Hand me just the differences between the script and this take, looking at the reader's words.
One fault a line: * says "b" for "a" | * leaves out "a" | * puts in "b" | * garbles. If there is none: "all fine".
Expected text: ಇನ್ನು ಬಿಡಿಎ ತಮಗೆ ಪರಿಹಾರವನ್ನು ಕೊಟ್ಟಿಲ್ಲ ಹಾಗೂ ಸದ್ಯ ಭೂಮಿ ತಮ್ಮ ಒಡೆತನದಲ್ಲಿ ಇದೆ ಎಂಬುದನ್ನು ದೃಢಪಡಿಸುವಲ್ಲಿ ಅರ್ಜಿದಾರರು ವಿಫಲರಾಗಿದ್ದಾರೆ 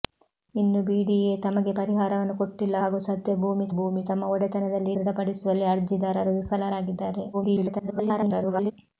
* puts in "ಭೂಮಿ"
* leaves out "ಇದೆ ಎಂಬುದನ್ನು"
* garbles